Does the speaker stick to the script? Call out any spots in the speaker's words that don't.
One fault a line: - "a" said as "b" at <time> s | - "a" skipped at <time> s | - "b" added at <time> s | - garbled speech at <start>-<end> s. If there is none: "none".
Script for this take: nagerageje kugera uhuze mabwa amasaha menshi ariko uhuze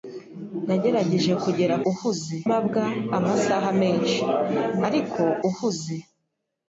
none